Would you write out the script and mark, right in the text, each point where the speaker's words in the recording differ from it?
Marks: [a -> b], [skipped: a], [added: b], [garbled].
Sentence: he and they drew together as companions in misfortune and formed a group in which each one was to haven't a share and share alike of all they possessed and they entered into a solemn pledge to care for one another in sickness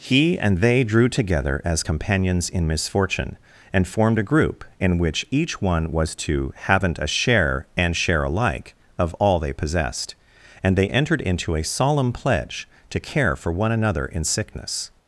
he and they drew together as companions in misfortune and formed a group in which each one was to haven't a share and share alike of all they possessed and they entered into a solemn pledge to care for one another in sickness